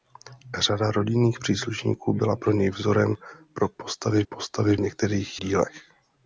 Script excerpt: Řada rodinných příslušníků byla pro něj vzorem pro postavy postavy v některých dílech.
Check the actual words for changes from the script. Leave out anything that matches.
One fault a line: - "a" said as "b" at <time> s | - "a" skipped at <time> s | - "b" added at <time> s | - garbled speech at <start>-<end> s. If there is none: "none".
none